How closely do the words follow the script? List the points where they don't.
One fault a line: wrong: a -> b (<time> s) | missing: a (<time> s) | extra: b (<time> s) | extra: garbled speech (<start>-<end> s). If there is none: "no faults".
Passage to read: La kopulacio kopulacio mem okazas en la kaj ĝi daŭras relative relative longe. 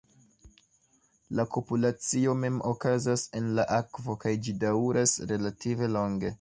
missing: kopulacio (2.3 s)
extra: akvo (3.8 s)
missing: relative (6.0 s)